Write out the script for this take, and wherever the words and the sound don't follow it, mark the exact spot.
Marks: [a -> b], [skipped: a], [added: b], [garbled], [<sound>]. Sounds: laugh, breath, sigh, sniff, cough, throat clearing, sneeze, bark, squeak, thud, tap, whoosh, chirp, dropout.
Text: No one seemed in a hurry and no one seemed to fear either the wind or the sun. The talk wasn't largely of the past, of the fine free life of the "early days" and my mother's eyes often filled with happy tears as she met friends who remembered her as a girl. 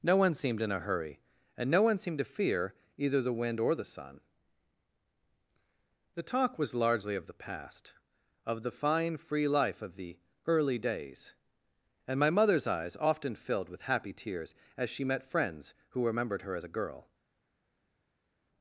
No one seemed in a hurry and no one seemed to fear either the wind or the sun. The talk [wasn't -> was] largely of the past, of the fine free life of the "early days" and my mother's eyes often filled with happy tears as she met friends who remembered her as a girl.